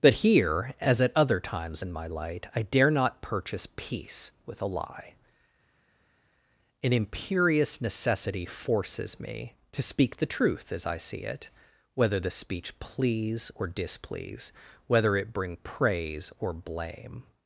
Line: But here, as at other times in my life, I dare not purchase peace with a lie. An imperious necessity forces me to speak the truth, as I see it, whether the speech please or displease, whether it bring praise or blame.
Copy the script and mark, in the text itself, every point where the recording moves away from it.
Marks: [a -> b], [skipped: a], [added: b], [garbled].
But here, as at other times in my [life, -> light] I dare not purchase peace with a lie. An imperious necessity forces me to speak the truth, as I see it, whether the speech please or displease, whether it bring praise or blame.